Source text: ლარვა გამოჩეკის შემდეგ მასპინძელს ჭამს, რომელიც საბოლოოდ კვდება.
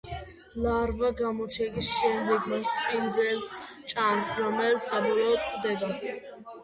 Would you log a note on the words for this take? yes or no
no